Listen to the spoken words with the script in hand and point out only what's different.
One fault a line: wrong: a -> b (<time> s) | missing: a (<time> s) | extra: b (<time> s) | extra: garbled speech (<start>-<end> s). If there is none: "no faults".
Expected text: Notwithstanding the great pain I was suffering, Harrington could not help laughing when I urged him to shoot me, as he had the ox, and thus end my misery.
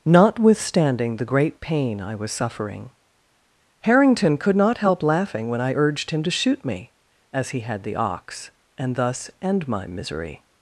no faults